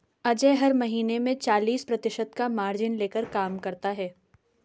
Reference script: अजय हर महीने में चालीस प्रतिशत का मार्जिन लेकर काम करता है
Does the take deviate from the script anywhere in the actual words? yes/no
no